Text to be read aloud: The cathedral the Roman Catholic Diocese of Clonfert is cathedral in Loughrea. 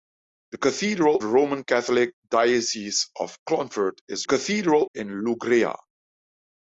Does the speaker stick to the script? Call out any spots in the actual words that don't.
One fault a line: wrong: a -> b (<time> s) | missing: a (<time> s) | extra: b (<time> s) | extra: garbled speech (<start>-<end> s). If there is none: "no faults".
no faults